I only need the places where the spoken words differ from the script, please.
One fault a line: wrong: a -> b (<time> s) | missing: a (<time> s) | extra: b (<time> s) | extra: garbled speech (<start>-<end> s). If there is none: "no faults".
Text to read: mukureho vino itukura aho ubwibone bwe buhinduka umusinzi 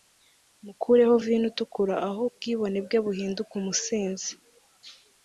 no faults